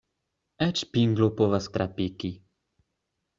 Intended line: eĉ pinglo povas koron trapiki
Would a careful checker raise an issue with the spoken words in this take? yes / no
yes